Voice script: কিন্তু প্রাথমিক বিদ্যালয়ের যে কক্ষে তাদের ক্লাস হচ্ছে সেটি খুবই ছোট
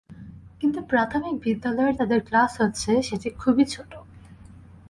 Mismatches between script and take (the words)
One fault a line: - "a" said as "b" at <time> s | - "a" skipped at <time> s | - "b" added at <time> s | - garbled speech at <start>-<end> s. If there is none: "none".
- "যে কক্ষে" skipped at 1.9 s